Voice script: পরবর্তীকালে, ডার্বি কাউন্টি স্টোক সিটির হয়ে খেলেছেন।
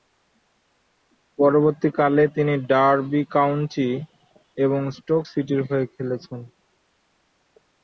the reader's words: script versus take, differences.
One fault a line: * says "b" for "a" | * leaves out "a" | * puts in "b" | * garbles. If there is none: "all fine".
* puts in "তিনি"
* puts in "এবং"